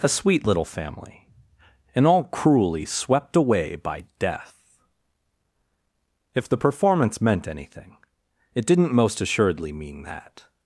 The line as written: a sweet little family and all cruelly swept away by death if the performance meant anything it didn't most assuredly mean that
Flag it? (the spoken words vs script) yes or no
no